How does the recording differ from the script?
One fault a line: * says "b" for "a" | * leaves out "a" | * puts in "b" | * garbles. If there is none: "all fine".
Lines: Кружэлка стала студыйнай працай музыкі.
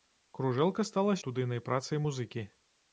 all fine